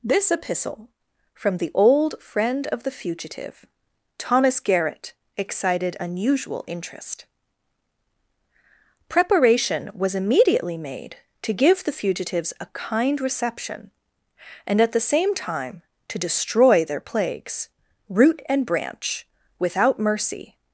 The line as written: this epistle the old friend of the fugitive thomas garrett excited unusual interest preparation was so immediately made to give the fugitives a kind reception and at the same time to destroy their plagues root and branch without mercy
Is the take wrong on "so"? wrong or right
wrong